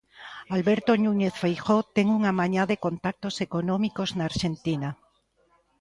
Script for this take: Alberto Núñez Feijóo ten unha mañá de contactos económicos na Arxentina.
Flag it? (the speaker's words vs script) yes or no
no